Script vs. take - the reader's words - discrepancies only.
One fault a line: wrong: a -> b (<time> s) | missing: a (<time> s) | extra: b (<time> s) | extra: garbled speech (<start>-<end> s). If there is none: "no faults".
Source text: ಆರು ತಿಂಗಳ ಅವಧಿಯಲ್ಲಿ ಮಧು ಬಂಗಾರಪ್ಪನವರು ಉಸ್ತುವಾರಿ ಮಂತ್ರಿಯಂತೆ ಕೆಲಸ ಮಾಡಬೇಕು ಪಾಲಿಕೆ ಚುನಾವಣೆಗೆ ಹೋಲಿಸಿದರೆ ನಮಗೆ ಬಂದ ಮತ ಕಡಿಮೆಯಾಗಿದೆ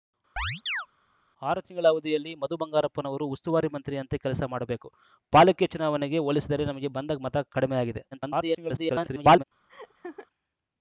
extra: garbled speech (8.1-9.4 s)